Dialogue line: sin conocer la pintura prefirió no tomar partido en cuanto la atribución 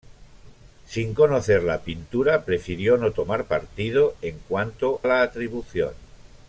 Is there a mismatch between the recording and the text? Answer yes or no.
no